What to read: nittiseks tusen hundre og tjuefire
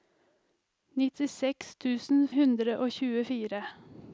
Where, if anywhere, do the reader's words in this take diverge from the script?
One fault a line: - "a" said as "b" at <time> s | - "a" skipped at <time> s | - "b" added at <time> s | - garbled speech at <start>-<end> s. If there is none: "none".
none